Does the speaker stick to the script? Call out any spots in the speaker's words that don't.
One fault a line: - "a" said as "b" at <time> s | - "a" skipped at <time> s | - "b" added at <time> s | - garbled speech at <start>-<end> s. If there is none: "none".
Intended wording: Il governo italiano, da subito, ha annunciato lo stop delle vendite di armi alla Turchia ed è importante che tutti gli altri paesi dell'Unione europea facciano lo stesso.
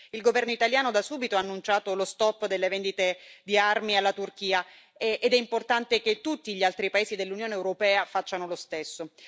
none